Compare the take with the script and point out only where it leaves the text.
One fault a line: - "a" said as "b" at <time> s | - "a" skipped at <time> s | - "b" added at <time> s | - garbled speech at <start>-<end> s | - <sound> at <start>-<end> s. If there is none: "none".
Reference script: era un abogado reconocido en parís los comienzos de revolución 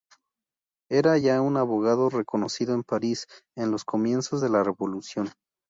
- "ya" added at 1.2 s
- "en" added at 3.6 s
- "la" added at 4.5 s